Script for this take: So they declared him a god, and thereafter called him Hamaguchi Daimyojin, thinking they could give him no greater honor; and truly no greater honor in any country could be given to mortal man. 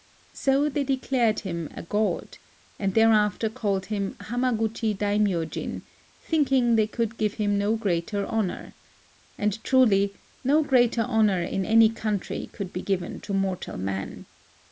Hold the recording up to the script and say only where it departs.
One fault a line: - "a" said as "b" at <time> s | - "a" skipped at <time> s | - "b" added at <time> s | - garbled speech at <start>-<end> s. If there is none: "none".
none